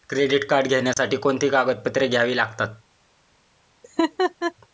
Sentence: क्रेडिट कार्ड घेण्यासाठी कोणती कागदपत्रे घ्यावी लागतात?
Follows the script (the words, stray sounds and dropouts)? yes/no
no